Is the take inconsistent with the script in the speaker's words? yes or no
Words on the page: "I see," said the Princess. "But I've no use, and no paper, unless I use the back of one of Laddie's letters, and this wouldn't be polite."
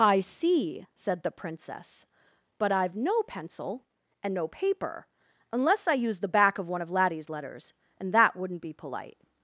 yes